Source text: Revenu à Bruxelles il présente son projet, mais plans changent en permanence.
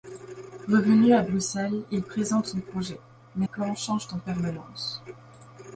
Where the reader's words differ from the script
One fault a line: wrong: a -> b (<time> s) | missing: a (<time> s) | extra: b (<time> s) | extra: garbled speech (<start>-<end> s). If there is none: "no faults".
no faults